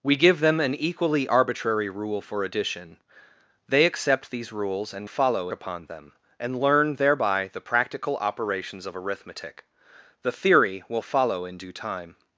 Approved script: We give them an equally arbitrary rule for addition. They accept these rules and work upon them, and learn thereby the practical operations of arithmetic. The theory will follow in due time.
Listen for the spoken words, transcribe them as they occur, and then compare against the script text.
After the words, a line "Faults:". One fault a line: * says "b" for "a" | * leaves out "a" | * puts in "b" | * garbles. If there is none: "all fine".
We give them an equally arbitrary rule for addition. They accept these rules and follow upon them, and learn thereby the practical operations of arithmetic. The theory will follow in due time.
Faults:
* says "follow" for "work"